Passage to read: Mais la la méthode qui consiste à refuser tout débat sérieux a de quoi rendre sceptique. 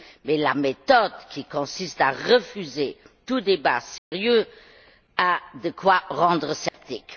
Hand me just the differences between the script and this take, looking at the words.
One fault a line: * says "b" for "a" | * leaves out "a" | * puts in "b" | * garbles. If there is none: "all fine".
* leaves out "la"